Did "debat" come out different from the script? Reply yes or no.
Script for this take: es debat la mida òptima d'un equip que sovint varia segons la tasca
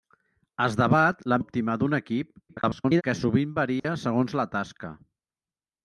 no